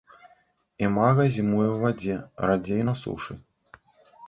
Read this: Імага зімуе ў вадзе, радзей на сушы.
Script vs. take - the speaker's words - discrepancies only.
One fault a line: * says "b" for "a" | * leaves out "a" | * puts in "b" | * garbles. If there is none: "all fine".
all fine